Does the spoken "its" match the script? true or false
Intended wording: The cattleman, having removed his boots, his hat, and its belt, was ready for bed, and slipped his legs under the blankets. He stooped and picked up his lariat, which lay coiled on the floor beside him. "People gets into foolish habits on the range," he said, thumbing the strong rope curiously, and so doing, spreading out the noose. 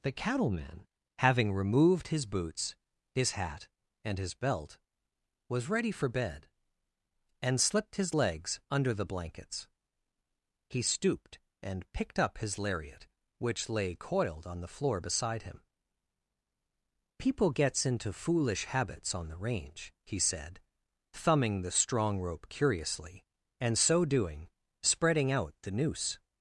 false